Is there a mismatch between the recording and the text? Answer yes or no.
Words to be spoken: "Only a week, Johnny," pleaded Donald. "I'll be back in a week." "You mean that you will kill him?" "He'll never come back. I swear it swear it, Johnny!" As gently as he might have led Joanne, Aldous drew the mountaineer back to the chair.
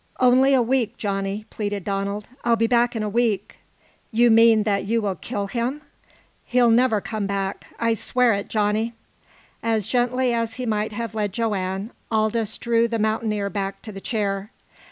yes